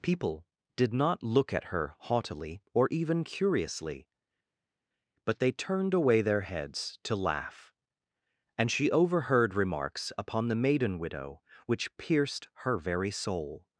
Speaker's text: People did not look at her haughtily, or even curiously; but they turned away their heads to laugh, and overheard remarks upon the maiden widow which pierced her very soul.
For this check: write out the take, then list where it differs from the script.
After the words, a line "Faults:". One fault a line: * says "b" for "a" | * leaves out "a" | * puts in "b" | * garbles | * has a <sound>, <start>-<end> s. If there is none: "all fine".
People did not look at her haughtily, or even curiously; but they turned away their heads to laugh, and she overheard remarks upon the maiden widow which pierced her very soul.
Faults:
* puts in "she"